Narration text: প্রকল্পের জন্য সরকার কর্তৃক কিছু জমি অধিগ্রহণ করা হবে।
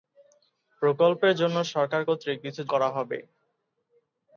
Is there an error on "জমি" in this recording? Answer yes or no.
yes